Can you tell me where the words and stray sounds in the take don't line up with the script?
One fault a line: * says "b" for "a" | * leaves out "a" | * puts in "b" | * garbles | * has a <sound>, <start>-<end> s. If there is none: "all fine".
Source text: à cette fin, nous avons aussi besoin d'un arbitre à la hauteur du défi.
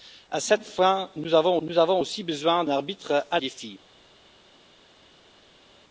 * puts in "nous avons"
* leaves out "d'un"
* leaves out "la hauteur du"